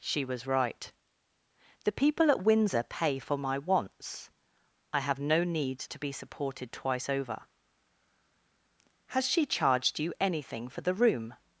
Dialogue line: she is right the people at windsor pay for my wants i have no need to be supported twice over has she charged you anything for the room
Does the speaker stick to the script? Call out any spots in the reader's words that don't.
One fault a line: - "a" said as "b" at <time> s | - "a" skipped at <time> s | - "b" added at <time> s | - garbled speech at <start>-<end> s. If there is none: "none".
- "is" said as "was" at 0.2 s